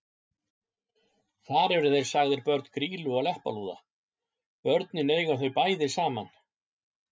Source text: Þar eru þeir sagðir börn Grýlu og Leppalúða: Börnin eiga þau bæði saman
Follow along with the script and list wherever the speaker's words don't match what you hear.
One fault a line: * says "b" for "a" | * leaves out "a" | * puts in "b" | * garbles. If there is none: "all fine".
all fine